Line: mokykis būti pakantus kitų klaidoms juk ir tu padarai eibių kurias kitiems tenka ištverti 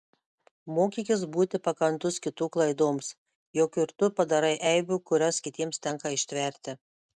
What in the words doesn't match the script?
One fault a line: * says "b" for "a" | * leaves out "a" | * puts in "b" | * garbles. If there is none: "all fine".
all fine